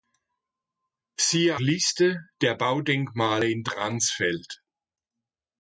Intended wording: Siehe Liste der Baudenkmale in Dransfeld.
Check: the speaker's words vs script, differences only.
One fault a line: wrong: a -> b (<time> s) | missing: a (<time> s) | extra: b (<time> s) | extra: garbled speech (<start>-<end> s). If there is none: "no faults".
no faults